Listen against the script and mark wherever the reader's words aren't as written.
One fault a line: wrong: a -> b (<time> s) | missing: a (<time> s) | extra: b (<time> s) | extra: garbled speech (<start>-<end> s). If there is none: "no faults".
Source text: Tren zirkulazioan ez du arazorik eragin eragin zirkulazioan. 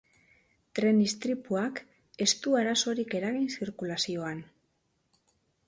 wrong: zirkulazioan -> istripuak (1.0 s)
missing: eragin (3.5 s)